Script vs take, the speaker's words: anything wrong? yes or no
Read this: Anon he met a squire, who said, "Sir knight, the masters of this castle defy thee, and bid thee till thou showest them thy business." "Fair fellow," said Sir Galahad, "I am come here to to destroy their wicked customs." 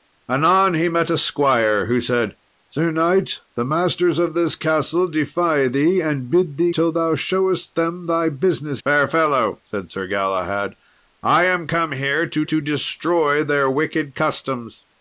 no